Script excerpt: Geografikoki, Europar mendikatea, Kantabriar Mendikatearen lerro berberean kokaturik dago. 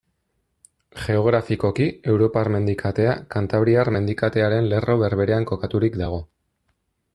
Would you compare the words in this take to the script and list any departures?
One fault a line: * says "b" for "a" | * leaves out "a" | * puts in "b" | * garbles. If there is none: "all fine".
all fine